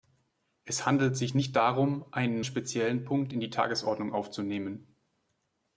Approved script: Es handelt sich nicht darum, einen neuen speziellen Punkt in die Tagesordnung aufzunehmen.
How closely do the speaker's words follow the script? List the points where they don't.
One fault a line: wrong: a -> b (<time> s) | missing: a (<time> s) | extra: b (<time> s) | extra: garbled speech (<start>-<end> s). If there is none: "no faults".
missing: neuen (2.4 s)